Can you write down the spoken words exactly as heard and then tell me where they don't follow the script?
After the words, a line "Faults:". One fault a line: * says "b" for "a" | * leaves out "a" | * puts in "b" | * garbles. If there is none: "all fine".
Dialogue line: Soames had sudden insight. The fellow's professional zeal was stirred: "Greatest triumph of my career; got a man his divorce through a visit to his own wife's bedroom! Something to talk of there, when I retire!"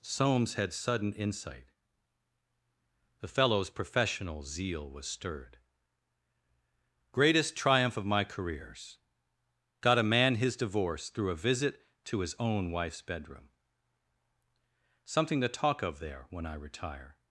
Soames had sudden insight. The fellow's professional zeal was stirred: "Greatest triumph of my careers; got a man his divorce through a visit to his own wife's bedroom! Something to talk of there, when I retire!"
Faults:
* says "careers" for "career"